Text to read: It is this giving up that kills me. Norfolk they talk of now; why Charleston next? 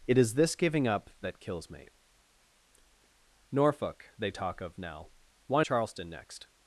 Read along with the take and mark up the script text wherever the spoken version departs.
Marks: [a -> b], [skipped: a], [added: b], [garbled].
It is this giving up that kills me. Norfolk they talk of now; why Charleston next?